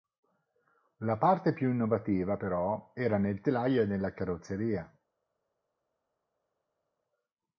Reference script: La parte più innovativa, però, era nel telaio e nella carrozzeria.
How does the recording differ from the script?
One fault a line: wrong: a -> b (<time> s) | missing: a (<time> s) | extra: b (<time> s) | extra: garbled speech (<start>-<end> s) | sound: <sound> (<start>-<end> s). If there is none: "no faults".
no faults